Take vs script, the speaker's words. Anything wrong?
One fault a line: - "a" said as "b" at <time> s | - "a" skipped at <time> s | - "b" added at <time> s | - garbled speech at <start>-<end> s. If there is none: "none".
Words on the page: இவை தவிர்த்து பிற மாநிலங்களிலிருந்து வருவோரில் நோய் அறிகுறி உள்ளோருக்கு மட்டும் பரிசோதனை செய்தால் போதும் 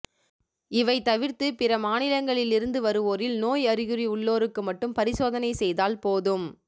none